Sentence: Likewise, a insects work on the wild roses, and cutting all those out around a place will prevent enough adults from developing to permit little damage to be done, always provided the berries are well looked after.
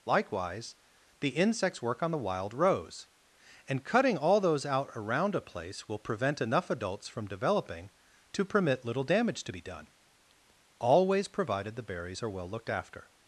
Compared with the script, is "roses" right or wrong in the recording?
wrong